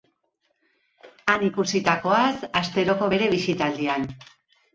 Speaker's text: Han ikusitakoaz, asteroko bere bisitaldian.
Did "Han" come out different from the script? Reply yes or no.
no